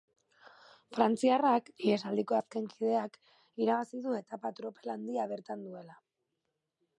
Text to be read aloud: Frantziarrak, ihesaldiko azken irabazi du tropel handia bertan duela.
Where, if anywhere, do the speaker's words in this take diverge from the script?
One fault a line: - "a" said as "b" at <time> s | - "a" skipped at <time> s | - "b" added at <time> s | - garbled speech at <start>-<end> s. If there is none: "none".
- "kideak" added at 2.8 s
- "etapa" added at 4.2 s